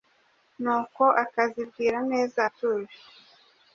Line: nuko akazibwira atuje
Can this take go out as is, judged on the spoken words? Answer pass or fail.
fail